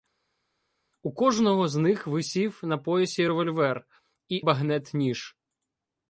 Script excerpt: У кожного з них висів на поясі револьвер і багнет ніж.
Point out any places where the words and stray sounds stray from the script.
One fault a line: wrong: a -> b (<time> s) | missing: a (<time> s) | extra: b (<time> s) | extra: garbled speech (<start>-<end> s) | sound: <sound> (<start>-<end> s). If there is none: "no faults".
no faults